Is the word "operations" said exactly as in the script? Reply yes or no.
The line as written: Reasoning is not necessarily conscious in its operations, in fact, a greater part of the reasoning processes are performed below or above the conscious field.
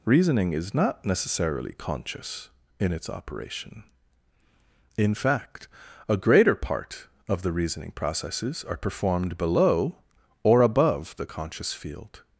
no